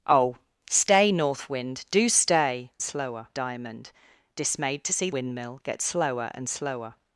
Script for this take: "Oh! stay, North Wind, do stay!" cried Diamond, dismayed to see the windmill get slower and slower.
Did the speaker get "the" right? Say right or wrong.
wrong